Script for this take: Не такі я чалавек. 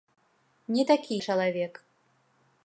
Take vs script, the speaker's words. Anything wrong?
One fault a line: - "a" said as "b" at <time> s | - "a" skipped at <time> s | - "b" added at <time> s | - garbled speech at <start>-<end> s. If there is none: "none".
- "я" skipped at 1.2 s